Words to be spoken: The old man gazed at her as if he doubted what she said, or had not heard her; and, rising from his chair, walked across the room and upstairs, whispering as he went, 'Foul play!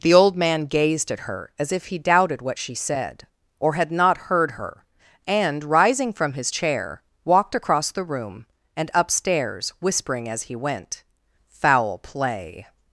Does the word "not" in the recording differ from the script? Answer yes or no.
no